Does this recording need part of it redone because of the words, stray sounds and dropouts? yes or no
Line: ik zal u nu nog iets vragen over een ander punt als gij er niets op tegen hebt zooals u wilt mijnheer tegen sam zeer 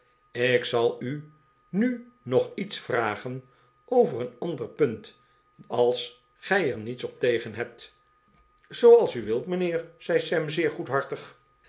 yes